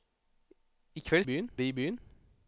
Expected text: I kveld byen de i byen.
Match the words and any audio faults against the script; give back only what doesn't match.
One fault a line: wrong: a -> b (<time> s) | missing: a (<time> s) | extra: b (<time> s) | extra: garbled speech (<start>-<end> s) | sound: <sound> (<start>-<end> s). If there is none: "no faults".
no faults